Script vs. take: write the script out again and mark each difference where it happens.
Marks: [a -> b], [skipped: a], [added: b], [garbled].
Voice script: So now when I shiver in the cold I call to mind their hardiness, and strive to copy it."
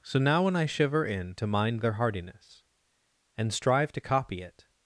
So now when I shiver in [skipped: the cold I call] to mind their hardiness, and strive to copy it."